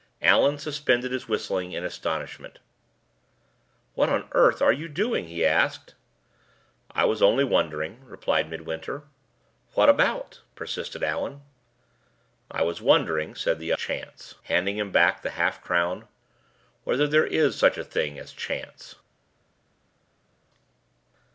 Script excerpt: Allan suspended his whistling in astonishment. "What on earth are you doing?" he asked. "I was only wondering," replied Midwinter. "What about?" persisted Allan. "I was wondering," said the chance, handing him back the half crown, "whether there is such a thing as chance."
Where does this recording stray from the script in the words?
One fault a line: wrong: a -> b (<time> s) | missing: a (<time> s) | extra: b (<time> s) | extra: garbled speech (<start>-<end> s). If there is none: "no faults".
no faults